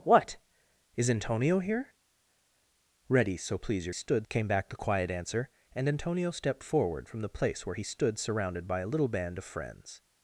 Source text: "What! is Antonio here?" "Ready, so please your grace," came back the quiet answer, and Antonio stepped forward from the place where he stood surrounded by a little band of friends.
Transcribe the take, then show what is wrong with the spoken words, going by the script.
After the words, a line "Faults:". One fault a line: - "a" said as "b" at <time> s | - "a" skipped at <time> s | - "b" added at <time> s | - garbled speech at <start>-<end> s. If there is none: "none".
"What! is Antonio here?" "Ready, so please your stood," came back the quiet answer, and Antonio stepped forward from the place where he stood surrounded by a little band of friends.
Faults:
- "grace" said as "stood" at 3.9 s